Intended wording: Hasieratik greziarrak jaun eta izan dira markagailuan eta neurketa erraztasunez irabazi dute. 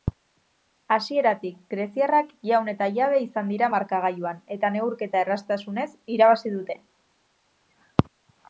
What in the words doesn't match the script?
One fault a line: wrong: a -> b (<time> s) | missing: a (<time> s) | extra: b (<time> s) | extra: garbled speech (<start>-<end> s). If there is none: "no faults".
extra: jabe (3.0 s)